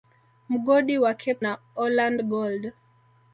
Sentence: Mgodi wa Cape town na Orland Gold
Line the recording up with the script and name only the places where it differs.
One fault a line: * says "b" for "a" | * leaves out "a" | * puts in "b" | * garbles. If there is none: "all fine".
* leaves out "town"